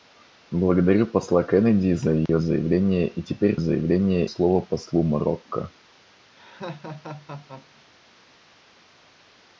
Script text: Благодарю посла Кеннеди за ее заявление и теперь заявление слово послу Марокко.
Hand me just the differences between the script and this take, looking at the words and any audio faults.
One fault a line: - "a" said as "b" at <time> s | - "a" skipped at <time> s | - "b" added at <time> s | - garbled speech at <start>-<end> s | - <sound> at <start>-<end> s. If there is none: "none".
- dropout at 2.3-2.3 s
- laugh at 6.3-7.9 s